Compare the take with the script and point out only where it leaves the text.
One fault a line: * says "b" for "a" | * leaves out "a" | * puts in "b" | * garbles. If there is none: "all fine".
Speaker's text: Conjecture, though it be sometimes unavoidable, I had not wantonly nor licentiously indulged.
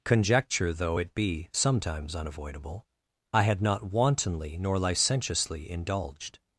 all fine